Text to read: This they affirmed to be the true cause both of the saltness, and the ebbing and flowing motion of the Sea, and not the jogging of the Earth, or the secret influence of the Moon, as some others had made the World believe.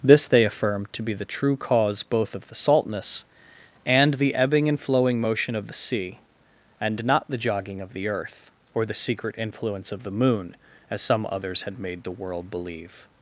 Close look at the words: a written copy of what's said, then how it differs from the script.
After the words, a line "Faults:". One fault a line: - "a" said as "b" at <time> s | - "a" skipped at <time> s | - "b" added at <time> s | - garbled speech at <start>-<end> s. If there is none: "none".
This they affirmed to be the true cause both of the saltness, and the ebbing and flowing motion of the Sea, and not the jogging of the Earth, or the secret influence of the Moon, as some others had made the World believe.
Faults:
none